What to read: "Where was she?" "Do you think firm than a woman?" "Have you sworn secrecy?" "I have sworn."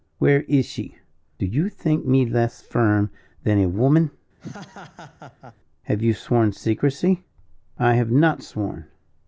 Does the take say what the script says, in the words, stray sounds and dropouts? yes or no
no